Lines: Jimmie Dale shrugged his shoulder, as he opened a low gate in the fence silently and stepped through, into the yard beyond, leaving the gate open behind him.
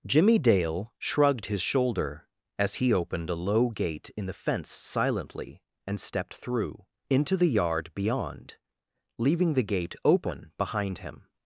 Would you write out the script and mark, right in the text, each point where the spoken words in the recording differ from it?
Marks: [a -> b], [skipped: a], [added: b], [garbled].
Jimmie Dale shrugged his shoulder, as he opened a low gate in the fence silently and stepped through, into the yard beyond, leaving the gate open behind him.